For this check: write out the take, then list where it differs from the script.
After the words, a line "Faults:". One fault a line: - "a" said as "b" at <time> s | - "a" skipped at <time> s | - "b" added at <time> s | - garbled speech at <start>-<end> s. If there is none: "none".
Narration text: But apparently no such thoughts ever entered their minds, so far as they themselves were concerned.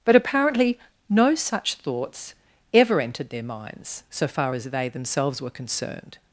But apparently no such thoughts ever entered their minds, so far as they themselves were concerned.
Faults:
none